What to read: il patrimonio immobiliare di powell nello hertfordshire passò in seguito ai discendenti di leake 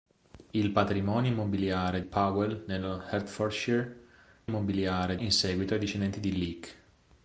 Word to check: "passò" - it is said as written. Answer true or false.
false